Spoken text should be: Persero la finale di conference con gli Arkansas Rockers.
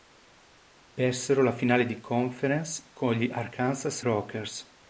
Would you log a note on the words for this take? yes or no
no